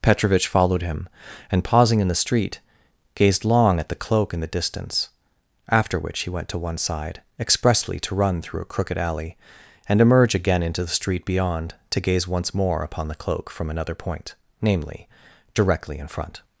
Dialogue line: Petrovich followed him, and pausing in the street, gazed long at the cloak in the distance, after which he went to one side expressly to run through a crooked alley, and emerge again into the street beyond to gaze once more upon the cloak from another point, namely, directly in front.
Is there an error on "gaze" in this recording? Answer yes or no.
no